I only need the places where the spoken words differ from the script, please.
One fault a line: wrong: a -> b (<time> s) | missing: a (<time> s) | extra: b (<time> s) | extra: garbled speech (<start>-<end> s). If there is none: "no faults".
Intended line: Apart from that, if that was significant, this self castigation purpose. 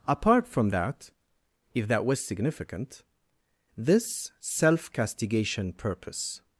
no faults